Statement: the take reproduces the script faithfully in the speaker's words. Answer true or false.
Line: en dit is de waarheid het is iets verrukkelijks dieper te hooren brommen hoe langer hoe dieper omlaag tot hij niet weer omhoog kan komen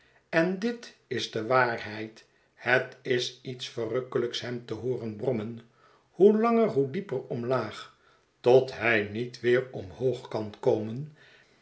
false